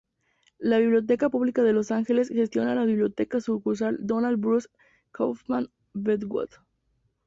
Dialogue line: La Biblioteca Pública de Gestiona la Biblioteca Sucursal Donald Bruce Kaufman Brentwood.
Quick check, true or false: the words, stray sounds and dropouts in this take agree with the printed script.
false